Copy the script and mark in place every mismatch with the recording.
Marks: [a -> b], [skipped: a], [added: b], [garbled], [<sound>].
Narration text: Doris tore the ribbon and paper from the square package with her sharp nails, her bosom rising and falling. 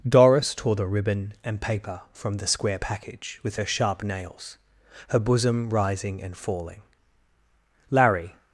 Doris tore the ribbon and paper from the square package with her sharp nails, her bosom rising and falling. [added: Larry]